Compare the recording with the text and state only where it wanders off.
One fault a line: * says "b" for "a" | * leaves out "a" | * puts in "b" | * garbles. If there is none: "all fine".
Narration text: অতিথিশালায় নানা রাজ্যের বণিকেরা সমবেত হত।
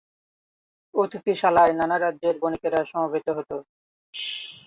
all fine